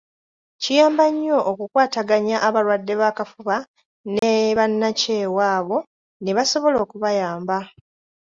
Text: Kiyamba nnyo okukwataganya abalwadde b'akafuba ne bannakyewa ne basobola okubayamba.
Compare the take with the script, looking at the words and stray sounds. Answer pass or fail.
fail